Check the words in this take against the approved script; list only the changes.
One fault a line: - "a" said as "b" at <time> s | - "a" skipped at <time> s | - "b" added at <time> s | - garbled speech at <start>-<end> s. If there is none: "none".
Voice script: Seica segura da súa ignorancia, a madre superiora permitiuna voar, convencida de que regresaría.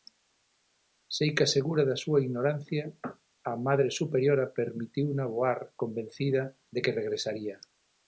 none